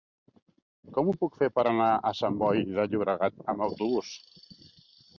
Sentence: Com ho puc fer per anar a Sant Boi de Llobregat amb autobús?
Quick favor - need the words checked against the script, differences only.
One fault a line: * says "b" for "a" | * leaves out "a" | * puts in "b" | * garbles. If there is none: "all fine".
all fine